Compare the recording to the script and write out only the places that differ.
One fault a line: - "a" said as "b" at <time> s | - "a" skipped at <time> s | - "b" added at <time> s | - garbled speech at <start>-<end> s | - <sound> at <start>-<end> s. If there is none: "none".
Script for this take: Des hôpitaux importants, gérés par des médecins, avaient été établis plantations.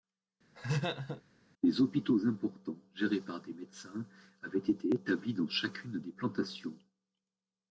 - laugh at 0.5-1.2 s
- "dans chacune des" added at 5.3 s